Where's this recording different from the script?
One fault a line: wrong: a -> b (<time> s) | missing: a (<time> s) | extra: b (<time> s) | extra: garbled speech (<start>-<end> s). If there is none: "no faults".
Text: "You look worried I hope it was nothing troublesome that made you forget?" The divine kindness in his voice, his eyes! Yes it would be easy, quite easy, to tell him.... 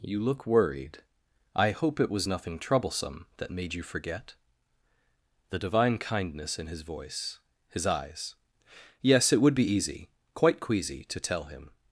wrong: easy -> queasy (10.6 s)